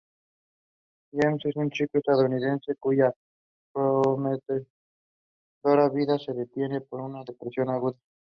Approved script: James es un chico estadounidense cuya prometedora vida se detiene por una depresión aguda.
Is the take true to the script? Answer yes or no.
yes